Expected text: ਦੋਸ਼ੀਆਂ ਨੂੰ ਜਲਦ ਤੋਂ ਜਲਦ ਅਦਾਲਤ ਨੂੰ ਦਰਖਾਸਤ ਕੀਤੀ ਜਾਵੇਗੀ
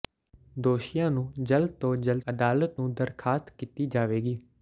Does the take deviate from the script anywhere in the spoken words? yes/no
no